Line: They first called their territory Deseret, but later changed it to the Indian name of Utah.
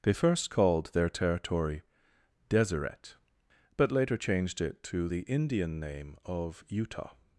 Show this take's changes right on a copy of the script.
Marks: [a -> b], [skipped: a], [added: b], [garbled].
They first called their territory Deseret, but later changed it to the Indian name of Utah.